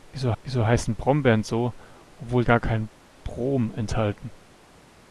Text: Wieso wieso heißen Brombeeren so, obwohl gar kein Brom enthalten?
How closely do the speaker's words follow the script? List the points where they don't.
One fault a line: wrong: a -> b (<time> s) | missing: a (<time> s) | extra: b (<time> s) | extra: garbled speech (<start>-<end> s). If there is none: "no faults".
no faults